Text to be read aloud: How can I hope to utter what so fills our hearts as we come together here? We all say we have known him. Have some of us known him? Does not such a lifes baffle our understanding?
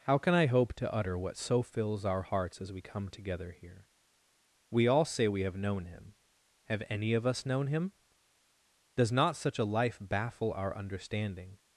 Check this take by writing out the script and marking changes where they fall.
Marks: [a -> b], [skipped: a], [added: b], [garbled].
How can I hope to utter what so fills our hearts as we come together here? We all say we have known him. Have [some -> any] of us known him? Does not such a [lifes -> life] baffle our understanding?